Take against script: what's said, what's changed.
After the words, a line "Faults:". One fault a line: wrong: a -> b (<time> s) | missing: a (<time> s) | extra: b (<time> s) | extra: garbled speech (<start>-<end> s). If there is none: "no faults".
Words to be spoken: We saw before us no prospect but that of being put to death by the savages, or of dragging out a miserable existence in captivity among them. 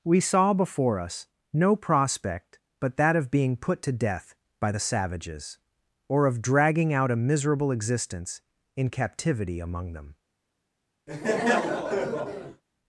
We saw before us no prospect but that of being put to death by the savages, or of dragging out a miserable existence in captivity among them.
Faults:
no faults